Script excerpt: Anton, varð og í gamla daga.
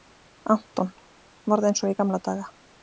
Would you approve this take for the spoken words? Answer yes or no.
no